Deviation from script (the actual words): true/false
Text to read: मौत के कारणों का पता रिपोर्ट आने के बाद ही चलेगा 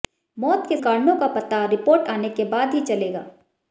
false